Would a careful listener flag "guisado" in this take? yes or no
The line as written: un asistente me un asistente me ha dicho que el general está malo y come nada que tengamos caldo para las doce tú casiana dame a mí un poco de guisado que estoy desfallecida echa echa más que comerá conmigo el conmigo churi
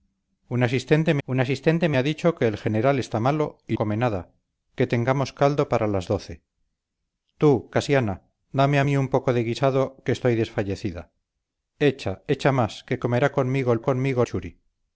no